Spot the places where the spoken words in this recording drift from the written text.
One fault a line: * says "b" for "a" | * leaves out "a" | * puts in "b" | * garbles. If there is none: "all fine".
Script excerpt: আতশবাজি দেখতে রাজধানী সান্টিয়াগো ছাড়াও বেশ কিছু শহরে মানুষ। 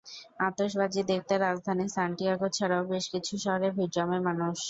* puts in "ভিড় জমায়"